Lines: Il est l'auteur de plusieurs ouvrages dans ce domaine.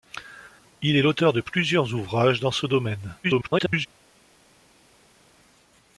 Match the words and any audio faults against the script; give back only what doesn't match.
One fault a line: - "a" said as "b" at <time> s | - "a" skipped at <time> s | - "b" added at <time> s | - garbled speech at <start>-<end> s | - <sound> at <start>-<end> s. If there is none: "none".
- garbled speech at 3.2-3.9 s